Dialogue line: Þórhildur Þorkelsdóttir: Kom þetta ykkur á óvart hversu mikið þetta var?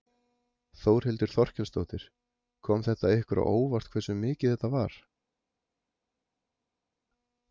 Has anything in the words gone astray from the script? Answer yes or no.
no